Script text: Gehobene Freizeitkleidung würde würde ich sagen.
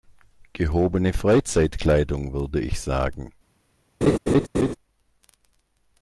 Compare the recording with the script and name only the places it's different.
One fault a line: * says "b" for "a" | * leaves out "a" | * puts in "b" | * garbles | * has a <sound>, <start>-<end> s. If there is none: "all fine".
* leaves out "würde"
* has a laugh, 4.0-4.8 s